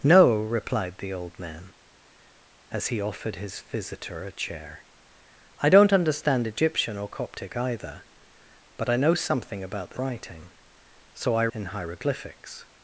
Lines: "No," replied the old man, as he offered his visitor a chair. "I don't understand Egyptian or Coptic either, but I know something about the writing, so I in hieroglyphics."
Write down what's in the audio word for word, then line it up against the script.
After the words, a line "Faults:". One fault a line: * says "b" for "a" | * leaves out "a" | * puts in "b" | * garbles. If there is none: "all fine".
"No," replied the old man, as he offered his visitor a chair. "I don't understand Egyptian or Coptic either, but I know something about the writing, so I in hieroglyphics."
Faults:
all fine